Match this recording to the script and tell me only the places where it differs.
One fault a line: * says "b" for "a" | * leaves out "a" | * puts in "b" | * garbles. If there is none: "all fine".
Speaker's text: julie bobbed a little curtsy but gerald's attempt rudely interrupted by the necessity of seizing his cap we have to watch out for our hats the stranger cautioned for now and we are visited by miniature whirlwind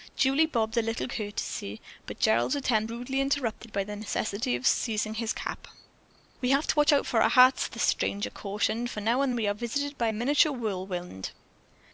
all fine